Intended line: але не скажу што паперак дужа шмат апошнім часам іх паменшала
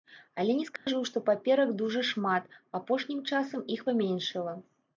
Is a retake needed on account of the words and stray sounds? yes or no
yes